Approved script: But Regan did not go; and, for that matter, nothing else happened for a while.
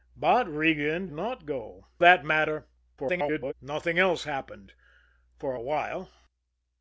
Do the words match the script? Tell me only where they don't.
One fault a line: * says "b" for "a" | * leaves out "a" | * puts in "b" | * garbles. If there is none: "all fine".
* leaves out "did"
* leaves out "and for"
* garbles